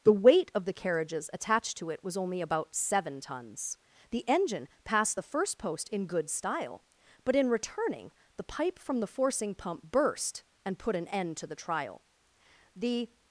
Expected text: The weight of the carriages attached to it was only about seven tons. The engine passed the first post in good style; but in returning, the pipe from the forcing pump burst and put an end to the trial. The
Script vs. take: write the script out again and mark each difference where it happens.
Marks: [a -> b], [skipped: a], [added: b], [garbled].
The weight of the carriages attached to it was only about seven tons. The engine passed the first post in good style; but in returning, the pipe from the forcing pump burst and put an end to the trial. The